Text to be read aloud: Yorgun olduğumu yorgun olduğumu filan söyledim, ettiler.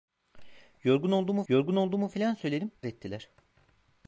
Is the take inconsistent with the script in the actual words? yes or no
no